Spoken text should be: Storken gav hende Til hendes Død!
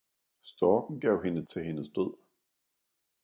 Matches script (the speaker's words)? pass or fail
pass